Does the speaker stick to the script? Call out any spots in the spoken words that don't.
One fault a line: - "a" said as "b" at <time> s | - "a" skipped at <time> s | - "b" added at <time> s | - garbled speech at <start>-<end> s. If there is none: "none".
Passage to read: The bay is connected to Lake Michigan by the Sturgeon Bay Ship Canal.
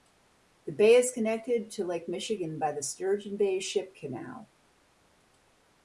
none